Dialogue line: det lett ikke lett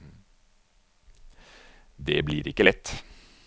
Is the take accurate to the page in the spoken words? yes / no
no